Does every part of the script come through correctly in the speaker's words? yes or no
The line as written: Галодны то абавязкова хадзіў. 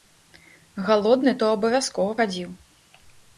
yes